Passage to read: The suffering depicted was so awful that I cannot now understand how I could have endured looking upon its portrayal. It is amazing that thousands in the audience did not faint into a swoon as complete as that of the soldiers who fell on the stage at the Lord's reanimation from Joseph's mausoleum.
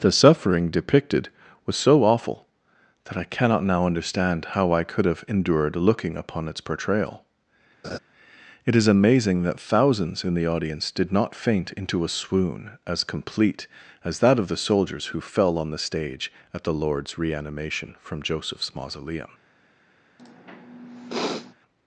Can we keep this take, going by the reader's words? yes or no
yes